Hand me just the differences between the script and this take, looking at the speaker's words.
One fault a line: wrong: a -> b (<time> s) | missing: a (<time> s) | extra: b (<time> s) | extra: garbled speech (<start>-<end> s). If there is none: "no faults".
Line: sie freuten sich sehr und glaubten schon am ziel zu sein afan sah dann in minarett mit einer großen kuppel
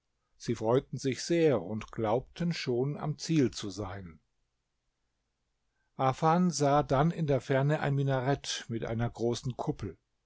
extra: der ferne ein (7.3 s)